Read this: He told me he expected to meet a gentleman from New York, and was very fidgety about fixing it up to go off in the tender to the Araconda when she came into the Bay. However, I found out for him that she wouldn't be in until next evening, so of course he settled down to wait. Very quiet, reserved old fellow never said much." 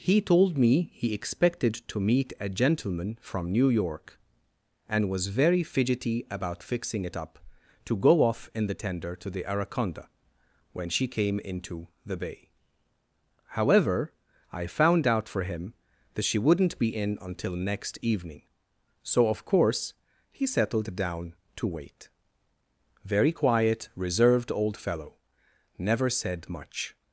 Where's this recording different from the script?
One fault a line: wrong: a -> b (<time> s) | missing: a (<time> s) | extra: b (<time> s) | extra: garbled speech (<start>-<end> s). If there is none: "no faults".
no faults